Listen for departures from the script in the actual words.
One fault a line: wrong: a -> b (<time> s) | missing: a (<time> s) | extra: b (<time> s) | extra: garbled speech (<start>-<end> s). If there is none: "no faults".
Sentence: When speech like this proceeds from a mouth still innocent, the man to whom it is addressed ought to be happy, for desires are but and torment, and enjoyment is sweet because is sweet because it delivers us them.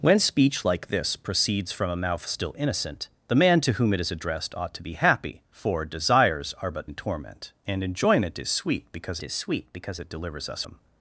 no faults